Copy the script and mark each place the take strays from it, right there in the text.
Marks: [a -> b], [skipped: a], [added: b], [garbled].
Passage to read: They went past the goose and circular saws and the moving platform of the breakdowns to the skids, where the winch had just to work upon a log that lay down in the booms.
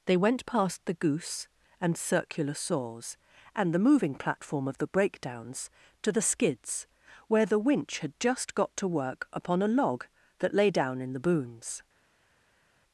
They went past the goose and circular saws and the moving platform of the breakdowns to the skids, where the winch had just [added: got] to work upon a log that lay down in the booms.